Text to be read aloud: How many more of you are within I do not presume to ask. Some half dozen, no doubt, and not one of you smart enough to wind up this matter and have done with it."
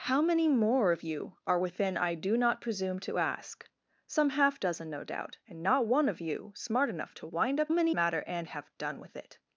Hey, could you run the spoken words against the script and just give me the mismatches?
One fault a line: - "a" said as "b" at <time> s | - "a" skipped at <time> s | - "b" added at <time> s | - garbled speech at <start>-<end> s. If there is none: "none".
- "this" said as "many" at 7.7 s